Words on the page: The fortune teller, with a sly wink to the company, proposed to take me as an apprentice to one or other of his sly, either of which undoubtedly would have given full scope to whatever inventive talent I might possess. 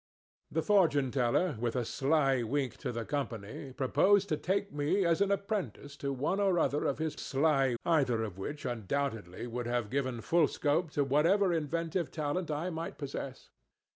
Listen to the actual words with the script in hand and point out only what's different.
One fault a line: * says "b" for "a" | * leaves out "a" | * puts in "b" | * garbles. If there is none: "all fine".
all fine